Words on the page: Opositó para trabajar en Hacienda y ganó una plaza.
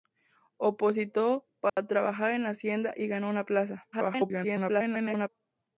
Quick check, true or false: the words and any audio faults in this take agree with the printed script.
false